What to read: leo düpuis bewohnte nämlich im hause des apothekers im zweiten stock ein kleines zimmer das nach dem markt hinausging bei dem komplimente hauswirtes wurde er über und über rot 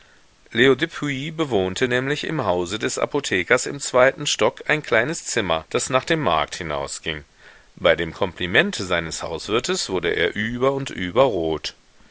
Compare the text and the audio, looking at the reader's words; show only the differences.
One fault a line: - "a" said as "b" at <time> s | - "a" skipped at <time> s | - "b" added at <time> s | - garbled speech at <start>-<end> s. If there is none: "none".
- "seines" added at 8.8 s